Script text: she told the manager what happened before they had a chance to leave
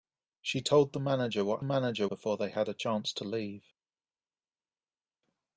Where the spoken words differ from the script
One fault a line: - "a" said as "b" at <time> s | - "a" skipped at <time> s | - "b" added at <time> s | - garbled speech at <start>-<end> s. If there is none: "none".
- "happened" said as "manager" at 1.6 s